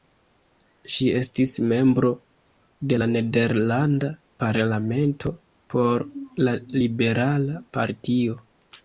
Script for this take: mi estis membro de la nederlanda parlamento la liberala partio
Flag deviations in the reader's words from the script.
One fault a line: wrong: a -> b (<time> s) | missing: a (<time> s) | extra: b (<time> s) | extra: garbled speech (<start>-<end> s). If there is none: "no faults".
wrong: mi -> ŝi (0.9 s)
extra: por (5.7 s)